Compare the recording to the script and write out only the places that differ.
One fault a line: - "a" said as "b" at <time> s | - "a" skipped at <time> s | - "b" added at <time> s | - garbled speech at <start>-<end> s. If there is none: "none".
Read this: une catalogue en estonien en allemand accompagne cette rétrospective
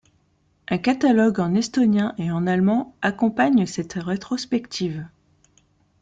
- "une" said as "un" at 0.7 s
- "et" added at 2.2 s